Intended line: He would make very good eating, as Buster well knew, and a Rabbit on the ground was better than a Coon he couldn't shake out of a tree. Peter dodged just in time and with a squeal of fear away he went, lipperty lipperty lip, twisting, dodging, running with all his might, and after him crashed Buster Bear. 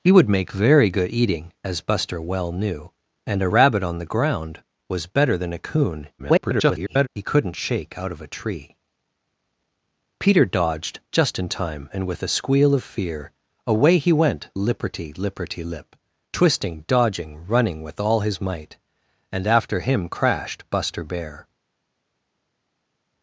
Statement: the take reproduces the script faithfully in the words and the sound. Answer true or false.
false